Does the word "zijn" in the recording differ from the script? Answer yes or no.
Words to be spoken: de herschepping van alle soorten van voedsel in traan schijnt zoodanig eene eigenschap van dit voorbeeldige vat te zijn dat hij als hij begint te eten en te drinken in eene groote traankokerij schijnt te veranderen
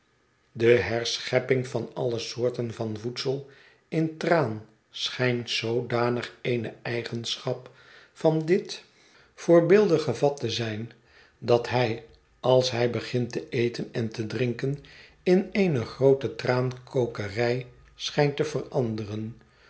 no